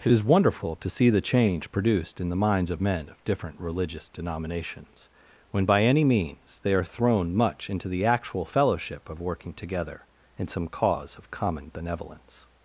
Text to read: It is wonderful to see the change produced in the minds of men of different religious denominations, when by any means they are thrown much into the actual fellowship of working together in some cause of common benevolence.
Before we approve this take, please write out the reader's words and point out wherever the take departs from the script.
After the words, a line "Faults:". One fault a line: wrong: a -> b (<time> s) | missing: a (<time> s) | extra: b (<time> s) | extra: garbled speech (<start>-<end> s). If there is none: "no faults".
It is wonderful to see the change produced in the minds of men of different religious denominations, when by any means they are thrown much into the actual fellowship of working together in some cause of common benevolence.
Faults:
no faults